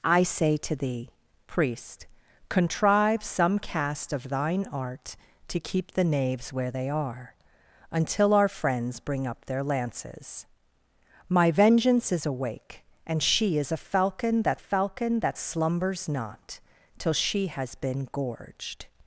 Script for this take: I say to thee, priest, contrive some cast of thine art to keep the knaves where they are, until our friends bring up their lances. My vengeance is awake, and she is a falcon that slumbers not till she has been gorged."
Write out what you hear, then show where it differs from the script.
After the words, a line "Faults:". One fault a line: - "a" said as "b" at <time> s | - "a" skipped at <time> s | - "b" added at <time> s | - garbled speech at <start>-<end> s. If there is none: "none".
I say to thee, priest, contrive some cast of thine art to keep the knaves where they are, until our friends bring up their lances. My vengeance is awake, and she is a falcon that falcon that slumbers not till she has been gorged."
Faults:
- "falcon that" added at 14.6 s